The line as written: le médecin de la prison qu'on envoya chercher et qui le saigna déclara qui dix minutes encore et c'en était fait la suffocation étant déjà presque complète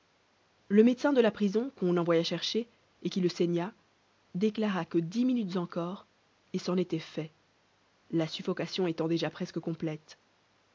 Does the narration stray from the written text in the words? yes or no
yes